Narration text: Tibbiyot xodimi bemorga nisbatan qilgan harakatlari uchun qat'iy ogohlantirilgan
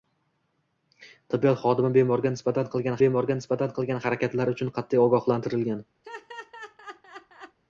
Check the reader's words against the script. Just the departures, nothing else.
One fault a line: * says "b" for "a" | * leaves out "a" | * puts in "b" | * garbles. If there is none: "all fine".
* puts in "bemorga nisbatan qilgan"